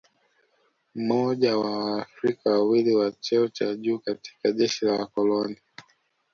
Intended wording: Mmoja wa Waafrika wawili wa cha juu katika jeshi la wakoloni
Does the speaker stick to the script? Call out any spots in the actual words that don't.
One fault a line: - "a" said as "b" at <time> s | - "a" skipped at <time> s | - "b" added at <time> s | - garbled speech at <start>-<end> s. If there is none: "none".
- "cheo" added at 3.1 s